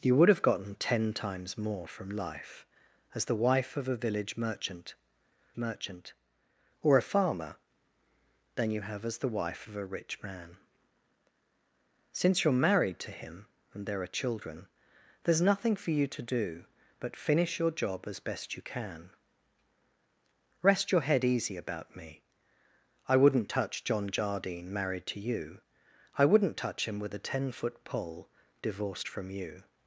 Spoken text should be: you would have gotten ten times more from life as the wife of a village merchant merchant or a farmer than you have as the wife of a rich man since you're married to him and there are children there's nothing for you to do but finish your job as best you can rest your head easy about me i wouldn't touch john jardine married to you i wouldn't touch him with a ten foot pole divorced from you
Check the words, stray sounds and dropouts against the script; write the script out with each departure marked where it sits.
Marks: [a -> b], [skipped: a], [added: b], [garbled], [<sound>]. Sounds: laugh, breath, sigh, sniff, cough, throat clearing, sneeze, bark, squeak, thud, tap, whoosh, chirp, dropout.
you would have gotten ten times more from life as the wife of a village merchant merchant or a farmer than you have as the wife of a rich man since you're married to him and there are children there's nothing for you to do but finish your job as best you can rest your head easy about me i wouldn't touch john jardine married to you i wouldn't touch him with a ten foot pole divorced from you